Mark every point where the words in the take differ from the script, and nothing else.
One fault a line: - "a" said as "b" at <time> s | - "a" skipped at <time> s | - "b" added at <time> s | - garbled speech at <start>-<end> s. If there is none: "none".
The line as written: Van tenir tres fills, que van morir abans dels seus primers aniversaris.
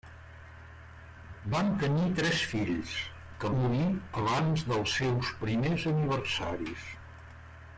- "van" skipped at 3.5 s